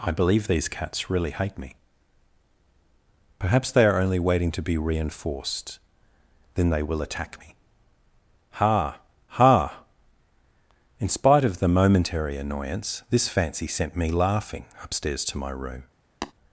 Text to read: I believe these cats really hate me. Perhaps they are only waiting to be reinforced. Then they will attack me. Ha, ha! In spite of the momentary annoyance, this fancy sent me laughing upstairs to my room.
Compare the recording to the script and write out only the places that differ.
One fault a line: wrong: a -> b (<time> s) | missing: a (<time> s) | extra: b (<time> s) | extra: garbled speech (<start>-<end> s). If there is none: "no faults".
no faults